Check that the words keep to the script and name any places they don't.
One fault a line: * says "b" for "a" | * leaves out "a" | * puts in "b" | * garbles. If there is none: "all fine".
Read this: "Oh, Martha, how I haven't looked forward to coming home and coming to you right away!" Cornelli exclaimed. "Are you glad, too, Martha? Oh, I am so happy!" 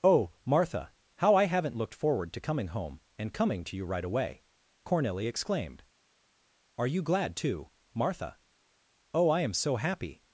all fine